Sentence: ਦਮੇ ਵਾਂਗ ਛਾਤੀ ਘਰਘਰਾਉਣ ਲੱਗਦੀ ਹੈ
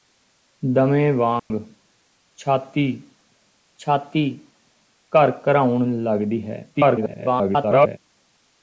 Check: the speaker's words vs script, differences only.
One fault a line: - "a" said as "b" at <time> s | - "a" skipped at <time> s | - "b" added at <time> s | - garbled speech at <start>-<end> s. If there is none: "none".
- "ਛਾਤੀ" added at 3.8 s
- garbled speech at 6.7-8.0 s